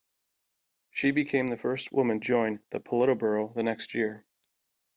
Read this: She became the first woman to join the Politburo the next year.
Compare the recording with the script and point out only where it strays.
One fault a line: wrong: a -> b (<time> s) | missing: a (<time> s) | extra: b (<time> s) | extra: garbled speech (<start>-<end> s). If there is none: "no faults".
missing: to (2.2 s)